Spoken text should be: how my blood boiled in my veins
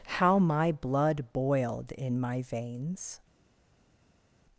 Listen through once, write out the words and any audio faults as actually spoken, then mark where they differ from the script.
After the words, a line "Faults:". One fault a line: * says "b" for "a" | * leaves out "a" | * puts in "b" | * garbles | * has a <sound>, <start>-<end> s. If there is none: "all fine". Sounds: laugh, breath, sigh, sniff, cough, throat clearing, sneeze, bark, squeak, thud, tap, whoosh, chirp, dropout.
how my blood boiled in my veins
Faults:
all fine